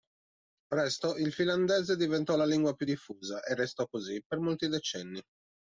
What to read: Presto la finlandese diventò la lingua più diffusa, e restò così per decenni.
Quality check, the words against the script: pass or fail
fail